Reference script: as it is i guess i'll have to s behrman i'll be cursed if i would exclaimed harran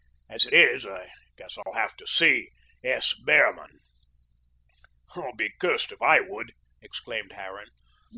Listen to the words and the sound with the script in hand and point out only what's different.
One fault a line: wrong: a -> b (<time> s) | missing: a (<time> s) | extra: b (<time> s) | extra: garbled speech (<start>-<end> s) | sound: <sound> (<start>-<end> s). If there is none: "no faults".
sound: dropout (1.6-1.7 s)
extra: see (2.1 s)